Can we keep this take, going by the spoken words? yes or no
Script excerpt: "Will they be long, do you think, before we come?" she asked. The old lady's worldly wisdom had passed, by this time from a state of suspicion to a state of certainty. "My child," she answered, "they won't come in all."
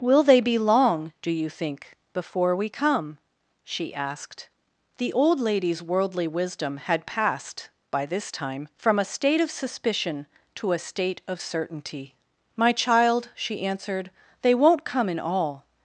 yes